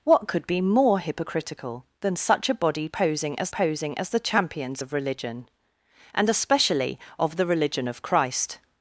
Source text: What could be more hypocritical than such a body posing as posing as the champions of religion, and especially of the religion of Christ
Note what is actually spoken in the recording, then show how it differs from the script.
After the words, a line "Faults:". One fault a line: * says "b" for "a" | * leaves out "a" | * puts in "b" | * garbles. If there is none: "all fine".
What could be more hypocritical than such a body posing as posing as the champions of religion, and especially of the religion of Christ
Faults:
all fine